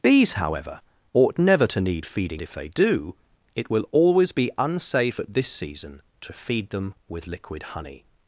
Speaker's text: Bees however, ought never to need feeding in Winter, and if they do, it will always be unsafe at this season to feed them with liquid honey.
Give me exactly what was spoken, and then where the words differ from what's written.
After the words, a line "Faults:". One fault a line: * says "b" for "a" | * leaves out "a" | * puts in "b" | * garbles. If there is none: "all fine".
Bees however, ought never to need feeding if they do, it will always be unsafe at this season to feed them with liquid honey.
Faults:
* leaves out "in Winter and"